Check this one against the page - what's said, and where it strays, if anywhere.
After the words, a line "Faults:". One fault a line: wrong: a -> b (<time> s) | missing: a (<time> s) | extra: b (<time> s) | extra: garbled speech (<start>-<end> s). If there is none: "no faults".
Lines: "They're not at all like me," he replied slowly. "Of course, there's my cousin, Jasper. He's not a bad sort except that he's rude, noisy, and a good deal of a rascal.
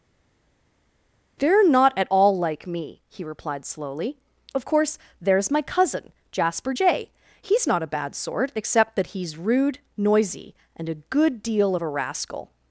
"They're not at all like me," he replied slowly. "Of course, there's my cousin, Jasper Jay. He's not a bad sort except that he's rude, noisy, and a good deal of a rascal.
Faults:
extra: Jay (6.7 s)